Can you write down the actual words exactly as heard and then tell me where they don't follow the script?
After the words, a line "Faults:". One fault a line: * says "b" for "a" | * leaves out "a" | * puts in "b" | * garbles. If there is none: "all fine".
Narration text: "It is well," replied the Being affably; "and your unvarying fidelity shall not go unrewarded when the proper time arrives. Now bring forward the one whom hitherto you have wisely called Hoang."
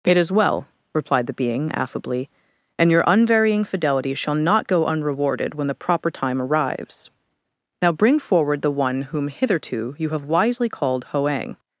"It is well," replied the Being affably; "and your unvarying fidelity shall not go unrewarded when the proper time arrives. Now bring forward the one whom hitherto you have wisely called Hoang."
Faults:
all fine